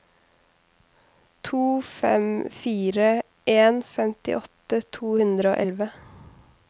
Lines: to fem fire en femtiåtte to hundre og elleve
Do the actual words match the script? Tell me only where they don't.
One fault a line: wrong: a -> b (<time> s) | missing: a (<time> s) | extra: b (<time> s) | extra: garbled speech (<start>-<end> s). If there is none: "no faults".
no faults